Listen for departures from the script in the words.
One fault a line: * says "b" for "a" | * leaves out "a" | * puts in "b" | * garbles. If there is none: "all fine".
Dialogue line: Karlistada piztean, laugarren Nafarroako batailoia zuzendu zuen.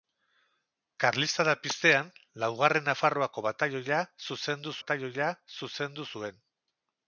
* puts in "batailoia zuzendu"